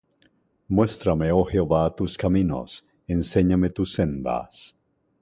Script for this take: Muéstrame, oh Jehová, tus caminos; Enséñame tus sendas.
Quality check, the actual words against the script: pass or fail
pass